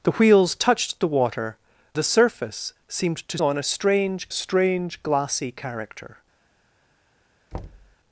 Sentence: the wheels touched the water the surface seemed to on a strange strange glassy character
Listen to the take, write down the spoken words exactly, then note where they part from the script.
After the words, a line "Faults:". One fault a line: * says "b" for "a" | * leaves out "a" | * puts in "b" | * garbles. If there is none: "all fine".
the wheels touched the water the surface seemed to on a strange strange glassy character
Faults:
all fine